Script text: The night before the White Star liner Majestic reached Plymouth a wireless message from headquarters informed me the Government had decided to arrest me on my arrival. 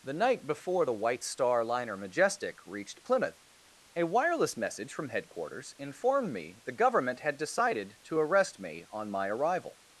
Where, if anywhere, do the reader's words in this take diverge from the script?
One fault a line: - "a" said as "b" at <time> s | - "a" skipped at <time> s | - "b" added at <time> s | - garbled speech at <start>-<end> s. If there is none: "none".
none